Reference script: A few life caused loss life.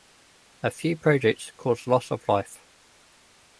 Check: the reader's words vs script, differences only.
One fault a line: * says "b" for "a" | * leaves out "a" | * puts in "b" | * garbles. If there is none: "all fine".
* says "projects" for "life"
* puts in "of"